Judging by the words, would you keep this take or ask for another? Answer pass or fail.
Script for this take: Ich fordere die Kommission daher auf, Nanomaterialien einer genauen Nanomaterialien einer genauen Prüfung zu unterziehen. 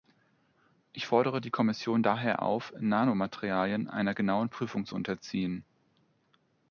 fail